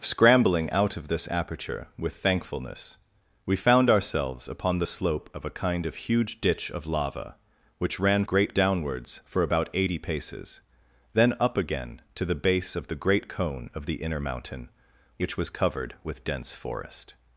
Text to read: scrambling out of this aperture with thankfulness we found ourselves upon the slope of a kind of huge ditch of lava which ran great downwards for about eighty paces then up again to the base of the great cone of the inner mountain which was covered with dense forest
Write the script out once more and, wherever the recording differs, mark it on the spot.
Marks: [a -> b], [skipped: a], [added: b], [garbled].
scrambling out of this aperture with thankfulness we found ourselves upon the slope of a kind of huge ditch of lava which ran great downwards for about eighty paces then up again to the base of the great cone of the inner mountain which was covered with dense forest